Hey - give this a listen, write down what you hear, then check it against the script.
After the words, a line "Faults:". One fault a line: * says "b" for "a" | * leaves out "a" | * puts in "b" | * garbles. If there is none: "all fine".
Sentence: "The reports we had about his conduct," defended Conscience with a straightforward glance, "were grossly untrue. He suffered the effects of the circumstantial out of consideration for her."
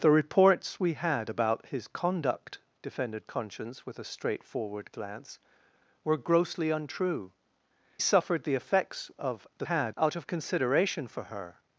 "The reports we had about his conduct," defended Conscience with a straightforward glance, "were grossly untrue. Suffered the effects of the had out of consideration for her."
Faults:
* leaves out "He"
* says "had" for "circumstantial"